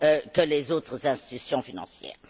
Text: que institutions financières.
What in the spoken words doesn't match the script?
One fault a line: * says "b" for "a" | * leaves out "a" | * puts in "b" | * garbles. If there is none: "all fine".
* puts in "les autres"